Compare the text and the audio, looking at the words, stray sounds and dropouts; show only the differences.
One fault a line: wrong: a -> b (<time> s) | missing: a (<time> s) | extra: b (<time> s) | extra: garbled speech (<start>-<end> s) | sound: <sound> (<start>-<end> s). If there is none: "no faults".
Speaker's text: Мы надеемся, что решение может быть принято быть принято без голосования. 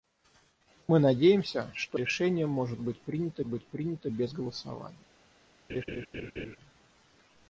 sound: laugh (5.7-6.6 s)